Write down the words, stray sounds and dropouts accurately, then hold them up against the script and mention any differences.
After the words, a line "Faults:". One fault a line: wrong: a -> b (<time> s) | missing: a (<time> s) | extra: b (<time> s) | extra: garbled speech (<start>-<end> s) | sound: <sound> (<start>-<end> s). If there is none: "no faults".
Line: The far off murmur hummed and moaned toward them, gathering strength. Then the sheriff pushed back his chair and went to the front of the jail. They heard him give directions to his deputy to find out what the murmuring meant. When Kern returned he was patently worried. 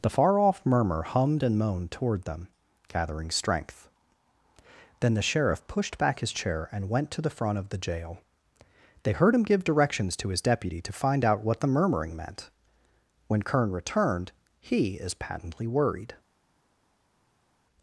The far off murmur hummed and moaned toward them, gathering strength. Then the sheriff pushed back his chair and went to the front of the jail. They heard him give directions to his deputy to find out what the murmuring meant. When Kern returned he is patently worried.
Faults:
wrong: was -> is (14.9 s)